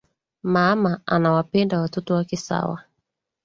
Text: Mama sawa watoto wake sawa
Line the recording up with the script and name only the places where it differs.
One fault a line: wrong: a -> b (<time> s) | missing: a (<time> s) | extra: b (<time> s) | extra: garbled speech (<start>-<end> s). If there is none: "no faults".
wrong: sawa -> anawapenda (1.1 s)